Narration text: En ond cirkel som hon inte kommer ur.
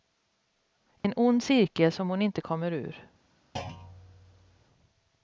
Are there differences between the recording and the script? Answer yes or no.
no